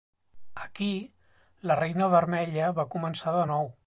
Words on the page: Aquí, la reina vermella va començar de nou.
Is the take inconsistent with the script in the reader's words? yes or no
no